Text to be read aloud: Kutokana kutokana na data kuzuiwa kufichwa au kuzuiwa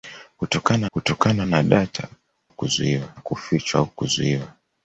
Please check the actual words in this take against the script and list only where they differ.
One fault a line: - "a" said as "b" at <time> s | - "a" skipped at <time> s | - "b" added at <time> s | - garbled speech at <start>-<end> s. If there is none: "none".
none